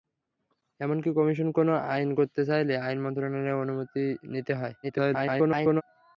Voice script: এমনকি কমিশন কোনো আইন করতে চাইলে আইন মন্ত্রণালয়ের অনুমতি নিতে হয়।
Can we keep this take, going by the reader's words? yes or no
no